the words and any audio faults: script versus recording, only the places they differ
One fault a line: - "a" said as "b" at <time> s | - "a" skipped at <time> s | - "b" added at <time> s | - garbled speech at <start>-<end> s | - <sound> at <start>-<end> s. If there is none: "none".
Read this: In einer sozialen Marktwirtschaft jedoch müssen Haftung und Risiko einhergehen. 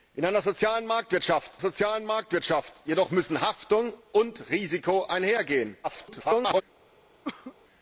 - "sozialen Marktwirtschaft" added at 1.6 s
- garbled speech at 5.8-6.6 s
- cough at 7.2-7.6 s